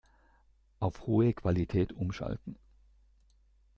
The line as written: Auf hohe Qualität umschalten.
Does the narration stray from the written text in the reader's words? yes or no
no